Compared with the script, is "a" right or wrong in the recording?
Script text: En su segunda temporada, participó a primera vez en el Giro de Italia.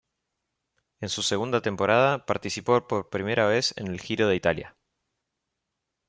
wrong